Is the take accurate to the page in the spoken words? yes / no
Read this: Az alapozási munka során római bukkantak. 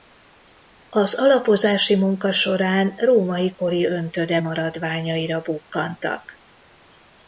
no